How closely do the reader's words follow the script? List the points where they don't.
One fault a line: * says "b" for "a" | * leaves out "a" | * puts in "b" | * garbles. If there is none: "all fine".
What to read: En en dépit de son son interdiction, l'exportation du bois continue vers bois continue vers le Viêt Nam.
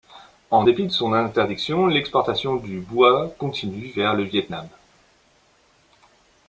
* leaves out "en"
* leaves out "son"
* leaves out "bois continue vers"